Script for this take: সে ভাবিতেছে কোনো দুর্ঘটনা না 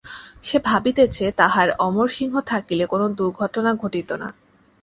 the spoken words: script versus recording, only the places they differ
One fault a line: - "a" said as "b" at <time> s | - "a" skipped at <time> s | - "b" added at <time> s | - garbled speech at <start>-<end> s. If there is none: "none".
- "তাহার অমরসিংহ থাকিলে" added at 1.4 s
- "ঘটিত" added at 3.7 s